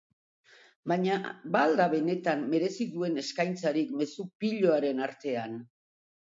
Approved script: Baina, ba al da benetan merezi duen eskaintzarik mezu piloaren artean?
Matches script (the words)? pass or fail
pass